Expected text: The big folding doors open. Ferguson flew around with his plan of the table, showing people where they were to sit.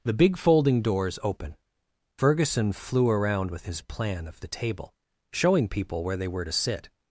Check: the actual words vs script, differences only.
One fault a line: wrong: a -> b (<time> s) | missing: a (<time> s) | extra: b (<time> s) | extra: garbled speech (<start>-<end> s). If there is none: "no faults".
no faults